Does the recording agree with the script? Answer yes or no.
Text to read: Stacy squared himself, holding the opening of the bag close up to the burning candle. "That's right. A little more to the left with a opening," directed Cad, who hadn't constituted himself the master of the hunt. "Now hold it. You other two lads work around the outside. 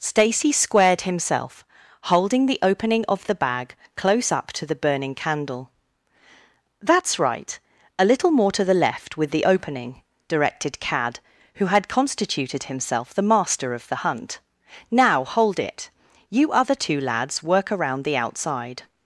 no